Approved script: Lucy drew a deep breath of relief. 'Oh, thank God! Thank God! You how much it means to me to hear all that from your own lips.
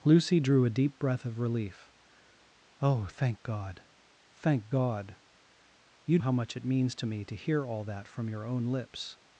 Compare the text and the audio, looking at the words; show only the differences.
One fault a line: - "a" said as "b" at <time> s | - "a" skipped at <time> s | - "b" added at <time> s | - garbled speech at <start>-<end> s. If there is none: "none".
none